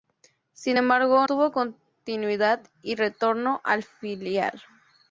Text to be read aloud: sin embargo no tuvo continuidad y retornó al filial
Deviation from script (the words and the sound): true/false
true